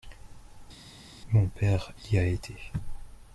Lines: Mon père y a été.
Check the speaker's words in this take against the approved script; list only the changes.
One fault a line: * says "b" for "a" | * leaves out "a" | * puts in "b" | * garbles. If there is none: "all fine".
all fine